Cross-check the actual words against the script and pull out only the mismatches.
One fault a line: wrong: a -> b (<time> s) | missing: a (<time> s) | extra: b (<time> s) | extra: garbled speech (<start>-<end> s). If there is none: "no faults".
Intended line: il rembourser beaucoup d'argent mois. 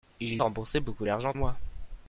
no faults